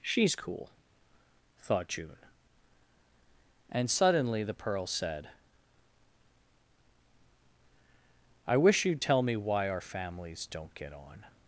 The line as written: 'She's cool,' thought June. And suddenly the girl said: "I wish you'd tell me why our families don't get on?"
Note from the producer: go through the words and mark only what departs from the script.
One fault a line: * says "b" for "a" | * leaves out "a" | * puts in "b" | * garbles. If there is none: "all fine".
* says "pearl" for "girl"